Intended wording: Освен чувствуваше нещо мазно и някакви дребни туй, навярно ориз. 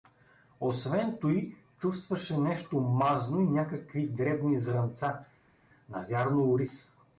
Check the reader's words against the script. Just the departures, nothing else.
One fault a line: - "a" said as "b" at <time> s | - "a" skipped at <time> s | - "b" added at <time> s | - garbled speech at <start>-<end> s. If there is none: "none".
- "туй" added at 1.2 s
- "туй" said as "зрънца" at 4.6 s